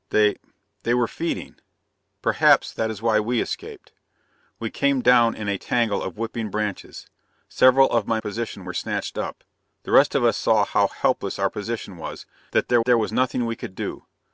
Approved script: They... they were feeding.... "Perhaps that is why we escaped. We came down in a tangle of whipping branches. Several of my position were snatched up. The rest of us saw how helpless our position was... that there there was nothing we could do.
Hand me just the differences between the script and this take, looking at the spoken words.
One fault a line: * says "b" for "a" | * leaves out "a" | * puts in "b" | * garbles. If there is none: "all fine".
all fine